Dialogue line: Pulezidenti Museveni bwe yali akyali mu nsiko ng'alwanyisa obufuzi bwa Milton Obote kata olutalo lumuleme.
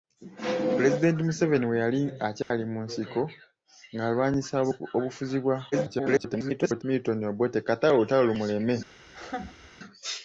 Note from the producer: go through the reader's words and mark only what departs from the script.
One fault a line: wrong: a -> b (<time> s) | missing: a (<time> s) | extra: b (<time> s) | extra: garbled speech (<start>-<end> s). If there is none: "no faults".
extra: garbled speech (5.7-6.8 s)